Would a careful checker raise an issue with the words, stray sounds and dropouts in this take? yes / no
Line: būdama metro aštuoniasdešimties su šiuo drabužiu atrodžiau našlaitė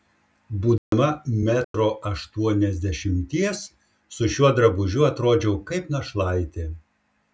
yes